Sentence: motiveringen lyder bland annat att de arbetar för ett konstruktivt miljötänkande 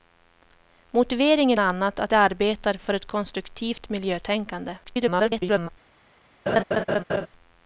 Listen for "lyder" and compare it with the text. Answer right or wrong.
wrong